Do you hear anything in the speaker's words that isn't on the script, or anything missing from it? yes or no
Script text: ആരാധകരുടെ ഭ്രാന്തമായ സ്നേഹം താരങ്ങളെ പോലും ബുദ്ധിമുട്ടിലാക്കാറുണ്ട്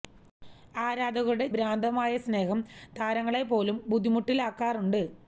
no